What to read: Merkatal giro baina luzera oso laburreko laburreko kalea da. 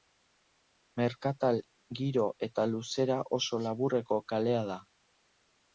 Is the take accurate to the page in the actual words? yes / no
no